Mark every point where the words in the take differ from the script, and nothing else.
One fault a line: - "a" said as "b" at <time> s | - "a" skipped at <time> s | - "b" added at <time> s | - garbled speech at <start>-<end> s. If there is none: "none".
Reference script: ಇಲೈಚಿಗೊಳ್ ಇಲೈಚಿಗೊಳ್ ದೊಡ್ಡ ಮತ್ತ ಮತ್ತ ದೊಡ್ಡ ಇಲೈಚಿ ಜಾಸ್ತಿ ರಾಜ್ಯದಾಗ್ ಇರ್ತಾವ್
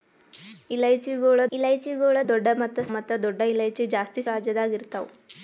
none